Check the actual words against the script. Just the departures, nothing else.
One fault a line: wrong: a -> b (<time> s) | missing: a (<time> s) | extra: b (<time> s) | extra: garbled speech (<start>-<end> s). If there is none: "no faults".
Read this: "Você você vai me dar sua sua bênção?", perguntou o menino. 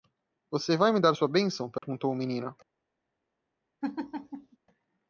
missing: você (0.8 s)
missing: sua (1.3 s)